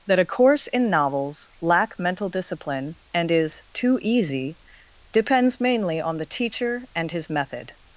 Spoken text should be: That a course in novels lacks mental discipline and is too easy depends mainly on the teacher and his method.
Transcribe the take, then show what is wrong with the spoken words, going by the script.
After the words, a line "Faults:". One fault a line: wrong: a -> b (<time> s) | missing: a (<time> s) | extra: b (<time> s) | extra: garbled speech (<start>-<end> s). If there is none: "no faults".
That a course in novels lack mental discipline and is too easy depends mainly on the teacher and his method.
Faults:
wrong: lacks -> lack (1.6 s)